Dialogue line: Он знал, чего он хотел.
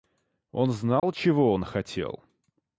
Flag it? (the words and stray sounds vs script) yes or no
yes